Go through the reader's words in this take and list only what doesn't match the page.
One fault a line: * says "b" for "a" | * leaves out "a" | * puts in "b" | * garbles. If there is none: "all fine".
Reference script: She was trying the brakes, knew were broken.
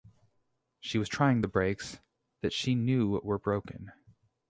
* puts in "that she"